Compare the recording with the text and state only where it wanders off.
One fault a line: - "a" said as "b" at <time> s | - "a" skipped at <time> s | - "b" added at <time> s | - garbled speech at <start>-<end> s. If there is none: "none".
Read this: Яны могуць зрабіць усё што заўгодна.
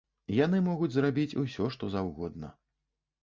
none